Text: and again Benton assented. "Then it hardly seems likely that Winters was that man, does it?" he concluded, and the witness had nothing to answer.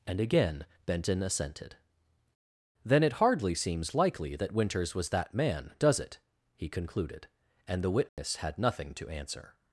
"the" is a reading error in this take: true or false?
false